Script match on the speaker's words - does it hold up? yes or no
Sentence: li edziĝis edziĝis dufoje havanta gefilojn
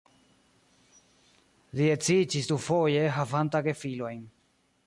no